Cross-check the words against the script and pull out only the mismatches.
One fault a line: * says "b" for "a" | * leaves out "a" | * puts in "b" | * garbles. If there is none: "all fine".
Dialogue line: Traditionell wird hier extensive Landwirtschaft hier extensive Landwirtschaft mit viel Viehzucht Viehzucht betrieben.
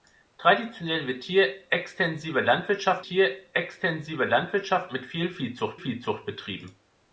all fine